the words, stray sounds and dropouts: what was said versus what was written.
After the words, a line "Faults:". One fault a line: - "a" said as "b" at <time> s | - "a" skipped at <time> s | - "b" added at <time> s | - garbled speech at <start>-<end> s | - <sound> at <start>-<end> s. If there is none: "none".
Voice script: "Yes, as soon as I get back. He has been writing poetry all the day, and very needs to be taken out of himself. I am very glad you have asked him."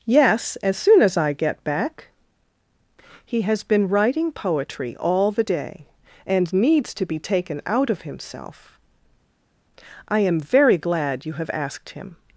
"Yes, as soon as I get back. He has been writing poetry all the day, and needs to be taken out of himself. I am very glad you have asked him."
Faults:
- "very" skipped at 6.5 s